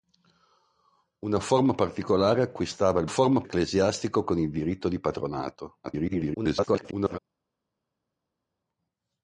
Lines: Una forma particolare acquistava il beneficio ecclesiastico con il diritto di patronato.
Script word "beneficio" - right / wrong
wrong